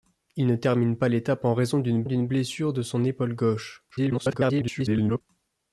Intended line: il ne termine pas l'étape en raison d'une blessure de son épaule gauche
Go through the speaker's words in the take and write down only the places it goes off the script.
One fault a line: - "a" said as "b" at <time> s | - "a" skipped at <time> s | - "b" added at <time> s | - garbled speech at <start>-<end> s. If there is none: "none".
- "d'une" added at 2.0 s
- garbled speech at 3.9-5.2 s